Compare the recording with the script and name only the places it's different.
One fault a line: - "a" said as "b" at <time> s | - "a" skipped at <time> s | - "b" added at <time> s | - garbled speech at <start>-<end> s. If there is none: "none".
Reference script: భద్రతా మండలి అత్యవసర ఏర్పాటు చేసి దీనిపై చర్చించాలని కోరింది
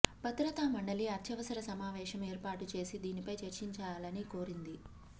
- "సమావేశం" added at 1.7 s